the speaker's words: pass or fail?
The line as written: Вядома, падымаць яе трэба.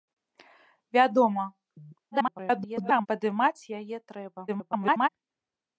fail